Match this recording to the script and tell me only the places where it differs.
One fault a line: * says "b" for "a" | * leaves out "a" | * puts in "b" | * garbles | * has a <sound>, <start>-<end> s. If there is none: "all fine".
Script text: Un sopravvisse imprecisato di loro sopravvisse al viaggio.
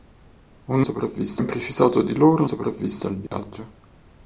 * has a dropout, 3.3-3.3 s